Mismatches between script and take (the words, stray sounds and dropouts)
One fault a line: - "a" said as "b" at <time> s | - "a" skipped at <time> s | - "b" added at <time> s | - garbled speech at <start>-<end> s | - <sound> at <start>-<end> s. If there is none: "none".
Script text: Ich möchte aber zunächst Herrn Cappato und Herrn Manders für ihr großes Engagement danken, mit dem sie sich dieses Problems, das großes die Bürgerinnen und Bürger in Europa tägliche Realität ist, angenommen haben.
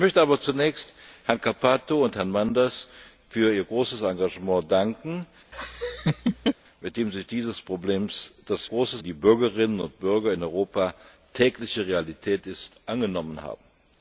- laugh at 5.5-6.5 s